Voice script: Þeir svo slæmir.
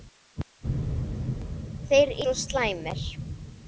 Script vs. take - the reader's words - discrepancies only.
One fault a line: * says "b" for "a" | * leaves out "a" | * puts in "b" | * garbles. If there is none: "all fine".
all fine